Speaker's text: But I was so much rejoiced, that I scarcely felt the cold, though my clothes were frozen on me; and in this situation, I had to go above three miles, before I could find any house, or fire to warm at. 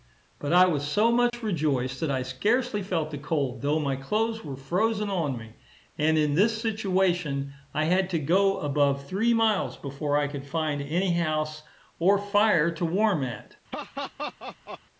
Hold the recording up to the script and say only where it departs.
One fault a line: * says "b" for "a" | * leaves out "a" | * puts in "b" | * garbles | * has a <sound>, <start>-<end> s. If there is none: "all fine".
* has a dropout, 1.3-1.3 s
* has a laugh, 13.7-14.8 s